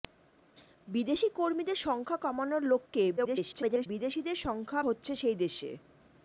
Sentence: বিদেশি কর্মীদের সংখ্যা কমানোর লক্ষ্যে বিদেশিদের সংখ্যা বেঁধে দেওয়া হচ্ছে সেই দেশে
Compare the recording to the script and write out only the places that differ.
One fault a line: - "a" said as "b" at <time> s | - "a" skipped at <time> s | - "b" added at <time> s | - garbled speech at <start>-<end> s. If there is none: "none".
- garbled speech at 3.2-3.9 s
- "বেঁধে দেওয়া" skipped at 4.8 s